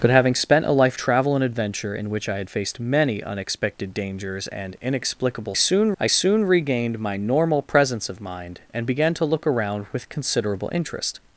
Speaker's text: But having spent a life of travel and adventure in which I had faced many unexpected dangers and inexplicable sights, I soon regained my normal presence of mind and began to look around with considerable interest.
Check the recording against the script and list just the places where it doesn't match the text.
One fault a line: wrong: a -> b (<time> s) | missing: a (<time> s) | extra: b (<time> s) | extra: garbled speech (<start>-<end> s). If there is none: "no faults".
missing: of (1.0 s)
wrong: sights -> soon (5.5 s)